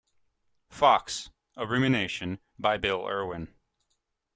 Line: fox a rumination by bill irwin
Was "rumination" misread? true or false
false